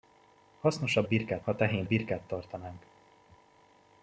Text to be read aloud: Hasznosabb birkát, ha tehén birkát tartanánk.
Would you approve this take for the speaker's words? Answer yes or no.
yes